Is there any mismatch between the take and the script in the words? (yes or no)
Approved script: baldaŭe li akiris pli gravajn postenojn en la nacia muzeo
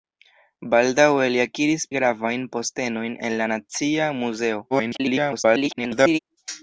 yes